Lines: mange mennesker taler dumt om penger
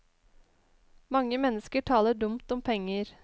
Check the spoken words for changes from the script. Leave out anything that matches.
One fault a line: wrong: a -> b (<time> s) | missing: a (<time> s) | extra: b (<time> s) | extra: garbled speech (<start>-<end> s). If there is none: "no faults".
no faults